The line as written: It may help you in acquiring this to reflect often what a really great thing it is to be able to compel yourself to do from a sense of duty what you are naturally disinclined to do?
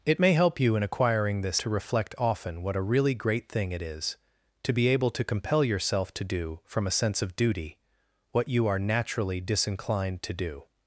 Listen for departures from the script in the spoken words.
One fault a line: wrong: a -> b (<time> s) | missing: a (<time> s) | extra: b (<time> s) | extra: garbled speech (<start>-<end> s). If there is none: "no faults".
no faults